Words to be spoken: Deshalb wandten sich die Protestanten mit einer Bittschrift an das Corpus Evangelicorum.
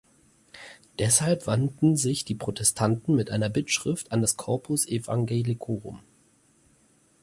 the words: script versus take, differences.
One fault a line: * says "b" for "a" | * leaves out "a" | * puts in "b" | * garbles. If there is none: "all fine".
all fine